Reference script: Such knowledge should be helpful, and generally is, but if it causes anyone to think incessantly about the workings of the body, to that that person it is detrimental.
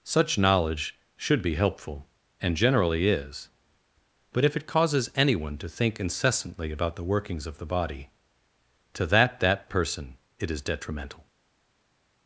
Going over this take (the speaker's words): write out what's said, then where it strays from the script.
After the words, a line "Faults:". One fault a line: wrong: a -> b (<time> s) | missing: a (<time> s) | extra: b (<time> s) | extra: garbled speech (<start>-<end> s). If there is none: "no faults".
Such knowledge should be helpful, and generally is, but if it causes anyone to think incessantly about the workings of the body, to that that person it is detrimental.
Faults:
no faults